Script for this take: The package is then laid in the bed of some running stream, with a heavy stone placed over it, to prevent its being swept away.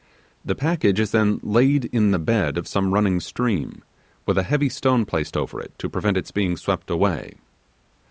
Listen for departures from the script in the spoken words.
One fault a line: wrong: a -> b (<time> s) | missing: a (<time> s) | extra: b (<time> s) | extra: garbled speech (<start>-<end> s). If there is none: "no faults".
no faults